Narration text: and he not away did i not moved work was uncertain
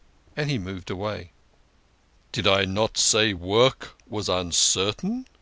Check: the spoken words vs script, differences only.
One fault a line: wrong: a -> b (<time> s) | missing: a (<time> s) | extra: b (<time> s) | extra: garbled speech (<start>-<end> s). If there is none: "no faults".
wrong: not -> moved (0.6 s)
wrong: moved -> say (3.0 s)